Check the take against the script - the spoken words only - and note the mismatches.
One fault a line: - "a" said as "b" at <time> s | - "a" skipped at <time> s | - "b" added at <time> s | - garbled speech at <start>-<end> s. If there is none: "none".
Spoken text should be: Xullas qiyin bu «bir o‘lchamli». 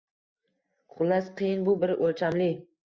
none